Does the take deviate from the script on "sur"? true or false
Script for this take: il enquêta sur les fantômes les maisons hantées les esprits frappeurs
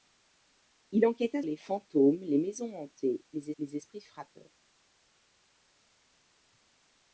true